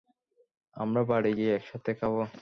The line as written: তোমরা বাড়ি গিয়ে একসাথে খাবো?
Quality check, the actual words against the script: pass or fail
fail